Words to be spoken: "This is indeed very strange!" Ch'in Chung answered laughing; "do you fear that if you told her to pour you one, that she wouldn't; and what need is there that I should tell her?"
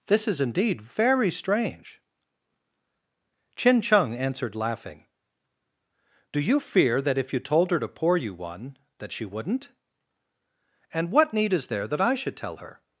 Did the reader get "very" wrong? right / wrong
right